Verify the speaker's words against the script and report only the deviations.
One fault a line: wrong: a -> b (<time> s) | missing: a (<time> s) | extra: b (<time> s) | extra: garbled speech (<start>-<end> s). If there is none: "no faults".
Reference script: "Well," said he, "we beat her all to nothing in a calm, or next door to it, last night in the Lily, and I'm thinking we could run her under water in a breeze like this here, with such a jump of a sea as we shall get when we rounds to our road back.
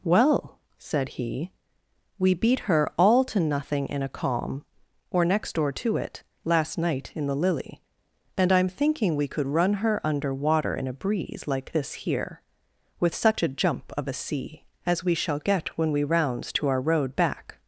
no faults